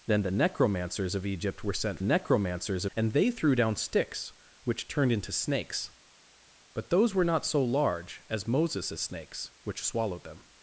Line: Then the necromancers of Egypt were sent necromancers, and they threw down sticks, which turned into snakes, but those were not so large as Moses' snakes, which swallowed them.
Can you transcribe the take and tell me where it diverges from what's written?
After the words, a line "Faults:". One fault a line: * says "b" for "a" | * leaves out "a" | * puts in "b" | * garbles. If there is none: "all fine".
Then the necromancers of Egypt were sent necromancers, and they threw down sticks, which turned into snakes, but those were not so large as Moses' snakes, which swallowed them.
Faults:
all fine